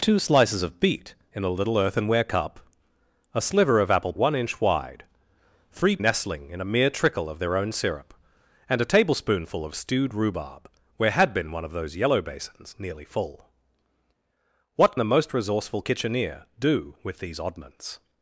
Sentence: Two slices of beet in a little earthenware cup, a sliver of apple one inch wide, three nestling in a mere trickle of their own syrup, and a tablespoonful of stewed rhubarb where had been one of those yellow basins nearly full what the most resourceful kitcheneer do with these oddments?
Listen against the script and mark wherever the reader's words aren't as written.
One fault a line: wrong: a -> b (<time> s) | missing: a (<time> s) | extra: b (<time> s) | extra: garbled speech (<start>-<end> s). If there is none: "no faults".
no faults